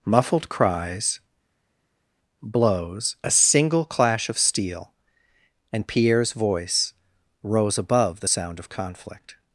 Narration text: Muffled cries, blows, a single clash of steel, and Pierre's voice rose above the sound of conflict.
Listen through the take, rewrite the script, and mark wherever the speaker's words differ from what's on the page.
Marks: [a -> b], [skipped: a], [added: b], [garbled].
Muffled cries, blows, a single clash of steel, and Pierre's voice rose above the sound of conflict.